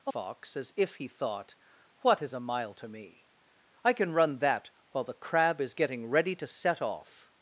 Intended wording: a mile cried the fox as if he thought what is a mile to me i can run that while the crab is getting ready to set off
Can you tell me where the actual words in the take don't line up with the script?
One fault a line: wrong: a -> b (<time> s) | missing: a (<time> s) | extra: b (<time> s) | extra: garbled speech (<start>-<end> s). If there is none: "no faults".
missing: mile cried the (0.1 s)